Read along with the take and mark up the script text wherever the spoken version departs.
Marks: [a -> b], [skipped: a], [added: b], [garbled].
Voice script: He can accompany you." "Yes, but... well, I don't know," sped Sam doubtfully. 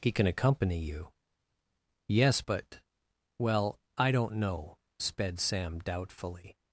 He can accompany you." "Yes, but... well, I don't know," sped Sam doubtfully.